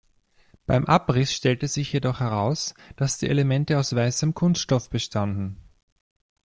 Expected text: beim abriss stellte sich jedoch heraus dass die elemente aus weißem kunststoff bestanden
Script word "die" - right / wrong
right